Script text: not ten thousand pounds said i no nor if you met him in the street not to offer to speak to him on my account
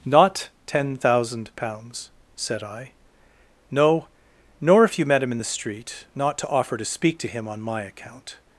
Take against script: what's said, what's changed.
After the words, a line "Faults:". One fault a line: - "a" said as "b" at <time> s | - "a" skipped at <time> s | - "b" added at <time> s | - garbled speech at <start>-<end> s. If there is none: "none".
not ten thousand pounds said i no nor if you met him in the street not to offer to speak to him on my account
Faults:
none